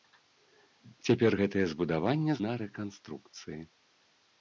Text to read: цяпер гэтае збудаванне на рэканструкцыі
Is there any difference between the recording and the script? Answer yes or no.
no